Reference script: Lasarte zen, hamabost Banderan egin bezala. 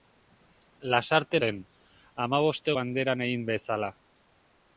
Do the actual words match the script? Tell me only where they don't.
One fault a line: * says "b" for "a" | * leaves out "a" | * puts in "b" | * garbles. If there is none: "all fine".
all fine